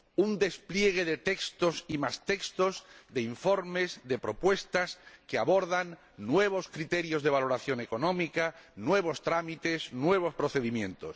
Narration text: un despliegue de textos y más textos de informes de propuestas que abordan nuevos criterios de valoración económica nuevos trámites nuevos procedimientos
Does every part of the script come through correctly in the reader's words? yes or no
yes